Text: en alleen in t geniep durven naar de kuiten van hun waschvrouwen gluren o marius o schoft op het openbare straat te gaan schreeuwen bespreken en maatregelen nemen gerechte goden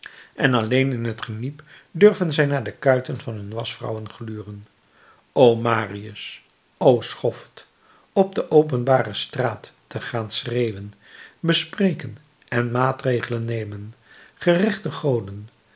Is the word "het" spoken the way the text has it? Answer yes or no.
no